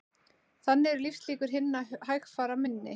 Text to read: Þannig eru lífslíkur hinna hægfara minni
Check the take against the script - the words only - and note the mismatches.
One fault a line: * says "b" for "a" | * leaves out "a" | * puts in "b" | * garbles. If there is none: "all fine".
all fine